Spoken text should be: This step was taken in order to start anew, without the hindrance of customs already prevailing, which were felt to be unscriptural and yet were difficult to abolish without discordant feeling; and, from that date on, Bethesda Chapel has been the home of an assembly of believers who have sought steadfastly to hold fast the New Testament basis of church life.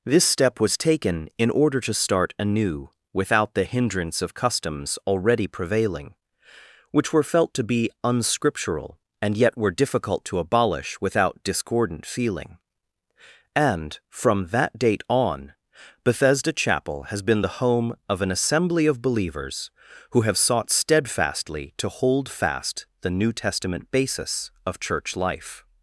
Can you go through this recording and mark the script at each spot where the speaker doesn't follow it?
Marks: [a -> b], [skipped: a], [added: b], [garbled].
This step was taken in order to start anew, without the hindrance of customs already prevailing, which were felt to be unscriptural and yet were difficult to abolish without discordant feeling; and, from that date on, Bethesda Chapel has been the home of an assembly of believers who have sought steadfastly to hold fast the New Testament basis of church life.